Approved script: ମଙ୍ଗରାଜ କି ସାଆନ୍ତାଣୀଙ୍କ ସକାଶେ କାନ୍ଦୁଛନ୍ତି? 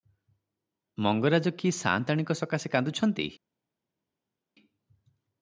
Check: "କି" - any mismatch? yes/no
no